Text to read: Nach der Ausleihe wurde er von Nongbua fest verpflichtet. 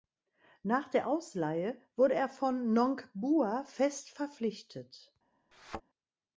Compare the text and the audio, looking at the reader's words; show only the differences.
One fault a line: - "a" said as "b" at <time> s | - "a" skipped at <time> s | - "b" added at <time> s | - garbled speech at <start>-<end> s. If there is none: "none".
none